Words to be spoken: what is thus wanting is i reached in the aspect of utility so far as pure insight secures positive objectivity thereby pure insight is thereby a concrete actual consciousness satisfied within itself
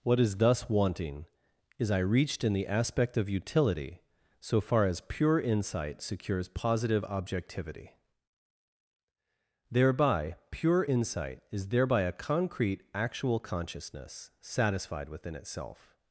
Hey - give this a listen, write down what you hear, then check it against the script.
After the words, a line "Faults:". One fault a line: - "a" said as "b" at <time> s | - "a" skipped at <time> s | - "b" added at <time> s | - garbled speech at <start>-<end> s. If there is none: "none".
what is thus wanting is i reached in the aspect of utility so far as pure insight secures positive objectivity thereby pure insight is thereby a concrete actual consciousness satisfied within itself
Faults:
none